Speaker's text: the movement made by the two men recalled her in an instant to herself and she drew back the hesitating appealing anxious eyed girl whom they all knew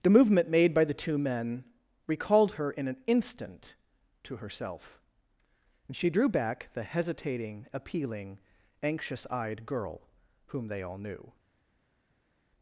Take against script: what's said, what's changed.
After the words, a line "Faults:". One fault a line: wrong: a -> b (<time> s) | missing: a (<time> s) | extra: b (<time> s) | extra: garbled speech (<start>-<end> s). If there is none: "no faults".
the movement made by the two men recalled her in an instant to herself and she drew back the hesitating appealing anxious eyed girl whom they all knew
Faults:
no faults